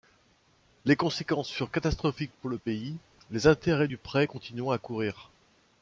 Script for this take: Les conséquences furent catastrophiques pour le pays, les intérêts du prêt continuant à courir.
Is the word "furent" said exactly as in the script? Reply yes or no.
yes